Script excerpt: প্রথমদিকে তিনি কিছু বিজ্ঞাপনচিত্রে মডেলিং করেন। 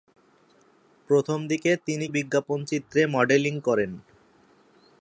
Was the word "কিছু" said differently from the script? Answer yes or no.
yes